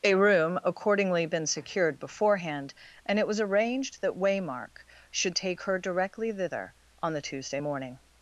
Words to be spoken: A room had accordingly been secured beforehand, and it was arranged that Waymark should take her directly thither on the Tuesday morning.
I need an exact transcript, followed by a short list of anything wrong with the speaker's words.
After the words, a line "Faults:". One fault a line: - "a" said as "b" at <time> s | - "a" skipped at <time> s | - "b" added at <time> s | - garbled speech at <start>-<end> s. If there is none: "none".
A room accordingly been secured beforehand, and it was arranged that Waymark should take her directly thither on the Tuesday morning.
Faults:
- "had" skipped at 0.6 s